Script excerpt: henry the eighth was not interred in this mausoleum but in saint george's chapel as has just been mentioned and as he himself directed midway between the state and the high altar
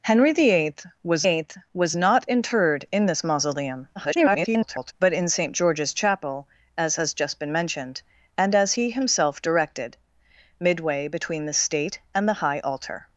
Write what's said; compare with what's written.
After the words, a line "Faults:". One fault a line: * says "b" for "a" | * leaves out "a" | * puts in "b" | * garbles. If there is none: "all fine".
henry the eighth was eighth was not interred in this mausoleum [garbled] but in saint george's chapel as has just been mentioned and as he himself directed midway between the state and the high altar
Faults:
* puts in "eighth was"
* garbles